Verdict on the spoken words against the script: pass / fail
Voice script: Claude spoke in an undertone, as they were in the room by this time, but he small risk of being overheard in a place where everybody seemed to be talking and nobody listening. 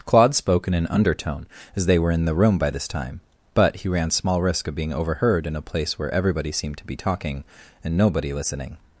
fail